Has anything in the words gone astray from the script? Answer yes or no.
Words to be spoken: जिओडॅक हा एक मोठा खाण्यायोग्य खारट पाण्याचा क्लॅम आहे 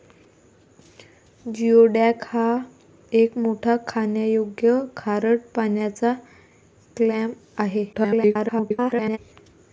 yes